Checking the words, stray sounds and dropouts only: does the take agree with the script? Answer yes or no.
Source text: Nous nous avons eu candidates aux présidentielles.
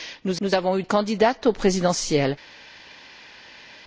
yes